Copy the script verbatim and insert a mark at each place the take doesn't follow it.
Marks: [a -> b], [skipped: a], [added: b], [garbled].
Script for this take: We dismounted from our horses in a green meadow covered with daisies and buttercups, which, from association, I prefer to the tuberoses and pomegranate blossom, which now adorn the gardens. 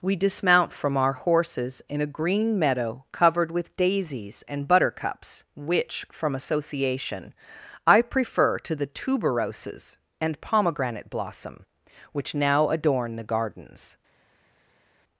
We [dismounted -> dismount] from our horses in a green meadow covered with daisies and buttercups, which, from association, I prefer to the tuberoses and pomegranate blossom, which now adorn the gardens.